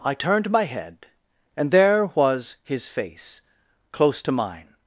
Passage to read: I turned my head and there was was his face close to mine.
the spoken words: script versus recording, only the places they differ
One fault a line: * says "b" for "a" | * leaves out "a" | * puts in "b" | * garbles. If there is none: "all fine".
* leaves out "was"